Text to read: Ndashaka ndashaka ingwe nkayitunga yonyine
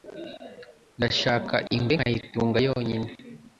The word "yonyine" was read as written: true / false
true